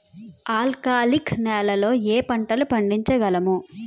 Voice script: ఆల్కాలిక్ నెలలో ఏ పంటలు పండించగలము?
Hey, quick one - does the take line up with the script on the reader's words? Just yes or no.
yes